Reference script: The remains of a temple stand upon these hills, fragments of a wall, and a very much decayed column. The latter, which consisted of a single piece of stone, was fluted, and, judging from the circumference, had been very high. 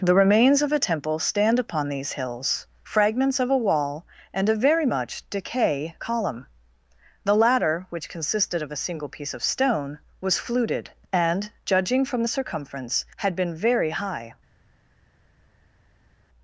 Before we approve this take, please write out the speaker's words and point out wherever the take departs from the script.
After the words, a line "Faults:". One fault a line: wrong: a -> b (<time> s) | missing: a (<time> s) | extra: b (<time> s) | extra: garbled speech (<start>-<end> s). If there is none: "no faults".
The remains of a temple stand upon these hills, fragments of a wall, and a very much decay column. The latter, which consisted of a single piece of stone, was fluted, and, judging from the circumference, had been very high.
Faults:
wrong: decayed -> decay (5.3 s)